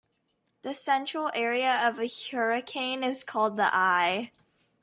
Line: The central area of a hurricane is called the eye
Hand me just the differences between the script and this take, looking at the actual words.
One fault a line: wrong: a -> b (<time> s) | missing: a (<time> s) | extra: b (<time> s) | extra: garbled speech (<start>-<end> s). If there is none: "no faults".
no faults